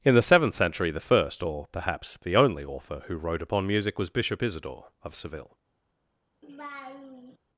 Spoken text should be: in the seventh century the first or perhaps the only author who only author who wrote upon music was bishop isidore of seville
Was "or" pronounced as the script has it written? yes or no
yes